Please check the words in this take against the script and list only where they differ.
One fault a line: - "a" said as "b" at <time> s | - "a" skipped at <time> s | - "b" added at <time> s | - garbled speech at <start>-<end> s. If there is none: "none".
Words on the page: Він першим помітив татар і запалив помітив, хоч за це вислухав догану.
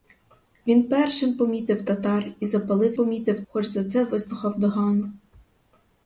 none